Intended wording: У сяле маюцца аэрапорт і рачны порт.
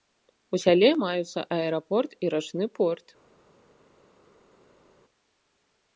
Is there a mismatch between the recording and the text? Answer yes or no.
no